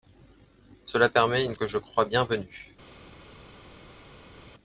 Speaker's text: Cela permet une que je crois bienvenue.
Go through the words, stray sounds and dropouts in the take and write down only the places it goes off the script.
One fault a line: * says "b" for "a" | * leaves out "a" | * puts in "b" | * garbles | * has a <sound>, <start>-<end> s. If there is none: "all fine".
all fine